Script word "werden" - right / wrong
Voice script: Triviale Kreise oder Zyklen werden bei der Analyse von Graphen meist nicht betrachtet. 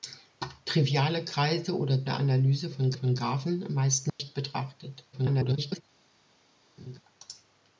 wrong